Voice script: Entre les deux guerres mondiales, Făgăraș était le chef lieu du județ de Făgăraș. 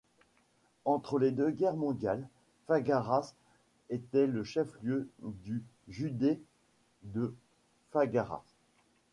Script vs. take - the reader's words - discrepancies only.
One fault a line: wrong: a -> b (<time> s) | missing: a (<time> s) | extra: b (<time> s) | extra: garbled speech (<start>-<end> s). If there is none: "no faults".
no faults